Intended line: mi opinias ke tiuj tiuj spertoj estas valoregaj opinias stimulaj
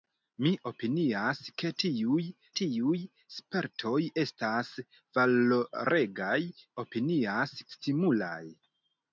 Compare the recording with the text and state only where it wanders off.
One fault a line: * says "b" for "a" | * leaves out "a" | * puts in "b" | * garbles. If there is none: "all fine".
all fine